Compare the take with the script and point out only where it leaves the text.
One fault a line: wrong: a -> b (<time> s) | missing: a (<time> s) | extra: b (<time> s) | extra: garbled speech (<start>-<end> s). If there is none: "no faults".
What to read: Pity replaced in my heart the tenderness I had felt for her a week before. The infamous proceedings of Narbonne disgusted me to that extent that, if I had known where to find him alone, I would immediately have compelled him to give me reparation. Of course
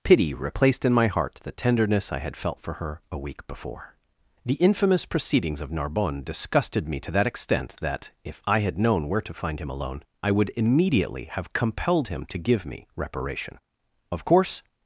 no faults